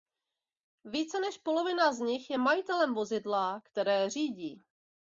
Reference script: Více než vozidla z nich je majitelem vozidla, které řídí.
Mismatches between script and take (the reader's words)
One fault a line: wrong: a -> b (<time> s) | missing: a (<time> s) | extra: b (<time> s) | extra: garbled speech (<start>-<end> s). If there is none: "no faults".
wrong: vozidla -> polovina (1.4 s)